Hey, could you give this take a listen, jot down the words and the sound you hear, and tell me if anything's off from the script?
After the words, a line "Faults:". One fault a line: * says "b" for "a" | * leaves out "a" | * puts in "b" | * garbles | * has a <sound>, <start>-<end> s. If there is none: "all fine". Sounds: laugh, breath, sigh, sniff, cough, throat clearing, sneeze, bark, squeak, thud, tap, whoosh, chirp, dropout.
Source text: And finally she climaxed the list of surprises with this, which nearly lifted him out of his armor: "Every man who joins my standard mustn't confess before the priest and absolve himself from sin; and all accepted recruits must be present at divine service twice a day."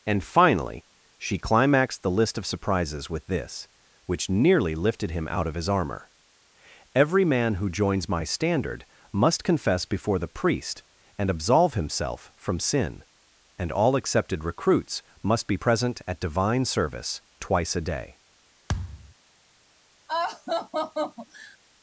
And finally she climaxed the list of surprises with this, which nearly lifted him out of his armor: "Every man who joins my standard must confess before the priest and absolve himself from sin; and all accepted recruits must be present at divine service twice a day."
Faults:
* says "must" for "mustn't"
* has a thud, 18.7-19.1 s
* has a laugh, 20.1-21.6 s